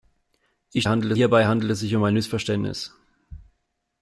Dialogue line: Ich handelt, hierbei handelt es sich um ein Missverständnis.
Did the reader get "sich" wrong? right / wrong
right